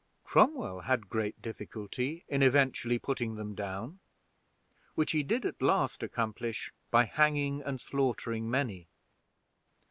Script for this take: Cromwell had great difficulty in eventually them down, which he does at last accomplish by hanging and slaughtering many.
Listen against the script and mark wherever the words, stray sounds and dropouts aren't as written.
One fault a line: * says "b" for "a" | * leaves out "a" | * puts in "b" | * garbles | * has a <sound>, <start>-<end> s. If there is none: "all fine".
* puts in "putting"
* says "did" for "does"